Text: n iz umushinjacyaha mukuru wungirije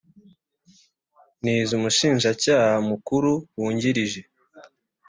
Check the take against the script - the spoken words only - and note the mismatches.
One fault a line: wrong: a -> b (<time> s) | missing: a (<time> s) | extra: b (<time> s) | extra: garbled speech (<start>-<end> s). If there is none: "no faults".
no faults